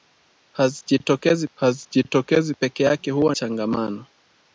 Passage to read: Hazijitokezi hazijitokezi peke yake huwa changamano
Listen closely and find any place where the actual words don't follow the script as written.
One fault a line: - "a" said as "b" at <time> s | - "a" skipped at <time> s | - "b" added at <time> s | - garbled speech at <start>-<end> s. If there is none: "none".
none